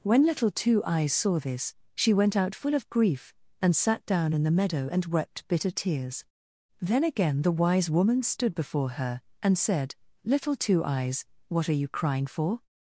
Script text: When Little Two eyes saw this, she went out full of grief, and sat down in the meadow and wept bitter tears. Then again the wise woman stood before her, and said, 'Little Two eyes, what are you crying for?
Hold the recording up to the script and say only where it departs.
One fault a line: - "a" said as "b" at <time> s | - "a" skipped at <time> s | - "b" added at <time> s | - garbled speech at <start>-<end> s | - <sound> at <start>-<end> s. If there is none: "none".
none